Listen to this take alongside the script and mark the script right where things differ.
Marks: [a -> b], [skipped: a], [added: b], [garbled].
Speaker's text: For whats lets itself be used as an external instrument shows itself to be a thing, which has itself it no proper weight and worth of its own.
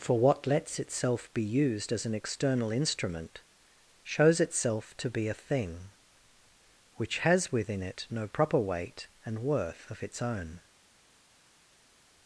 For [whats -> what] lets itself be used as an external instrument shows itself to be a thing, which has [itself -> within] it no proper weight and worth of its own.